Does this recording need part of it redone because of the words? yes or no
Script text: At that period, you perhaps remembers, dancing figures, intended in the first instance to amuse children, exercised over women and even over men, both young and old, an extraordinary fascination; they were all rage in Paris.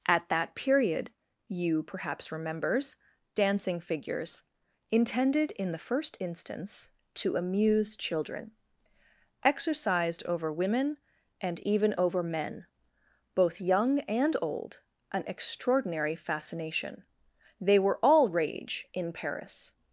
no